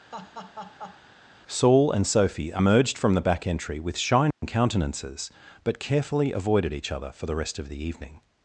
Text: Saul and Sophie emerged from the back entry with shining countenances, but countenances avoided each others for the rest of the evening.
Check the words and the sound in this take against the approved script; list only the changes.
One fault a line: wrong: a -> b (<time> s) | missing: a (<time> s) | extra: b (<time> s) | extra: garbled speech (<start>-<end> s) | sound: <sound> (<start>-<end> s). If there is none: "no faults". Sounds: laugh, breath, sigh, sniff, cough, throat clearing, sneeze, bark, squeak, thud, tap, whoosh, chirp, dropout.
sound: laugh (0.1-1.0 s)
sound: dropout (4.3-4.4 s)
wrong: countenances -> carefully (5.8 s)
wrong: others -> other (6.9 s)